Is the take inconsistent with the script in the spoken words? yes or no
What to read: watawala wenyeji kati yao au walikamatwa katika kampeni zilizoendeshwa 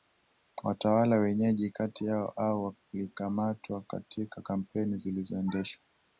no